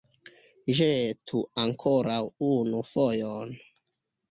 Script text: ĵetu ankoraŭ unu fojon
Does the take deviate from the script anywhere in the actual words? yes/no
no